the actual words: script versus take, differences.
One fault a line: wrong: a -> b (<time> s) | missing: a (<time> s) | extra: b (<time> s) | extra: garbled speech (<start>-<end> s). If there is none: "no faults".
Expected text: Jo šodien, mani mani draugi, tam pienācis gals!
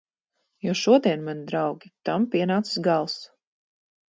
missing: mani (1.4 s)